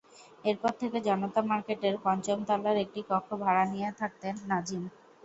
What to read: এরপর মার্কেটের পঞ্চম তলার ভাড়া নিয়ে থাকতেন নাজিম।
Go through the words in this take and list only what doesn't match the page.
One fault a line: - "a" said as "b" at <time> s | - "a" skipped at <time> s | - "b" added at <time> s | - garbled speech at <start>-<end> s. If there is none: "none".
- "থেকে জনতা" added at 0.8 s
- "একটি কক্ষ" added at 2.9 s